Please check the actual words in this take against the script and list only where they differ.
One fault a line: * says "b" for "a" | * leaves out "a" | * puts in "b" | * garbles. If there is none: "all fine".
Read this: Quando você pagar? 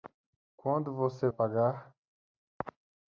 all fine